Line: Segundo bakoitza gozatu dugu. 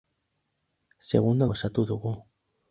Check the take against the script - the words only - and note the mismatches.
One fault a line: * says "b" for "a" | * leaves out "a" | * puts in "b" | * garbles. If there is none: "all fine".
* leaves out "bakoitza"